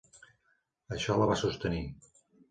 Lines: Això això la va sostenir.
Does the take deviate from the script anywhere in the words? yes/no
yes